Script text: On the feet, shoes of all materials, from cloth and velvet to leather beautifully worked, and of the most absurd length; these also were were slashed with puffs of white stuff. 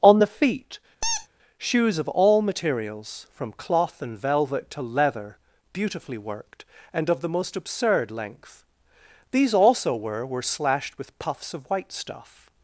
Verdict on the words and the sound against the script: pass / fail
fail